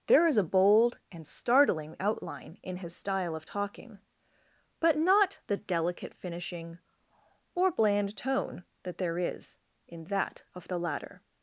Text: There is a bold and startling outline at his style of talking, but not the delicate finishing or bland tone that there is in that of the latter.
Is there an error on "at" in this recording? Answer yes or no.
yes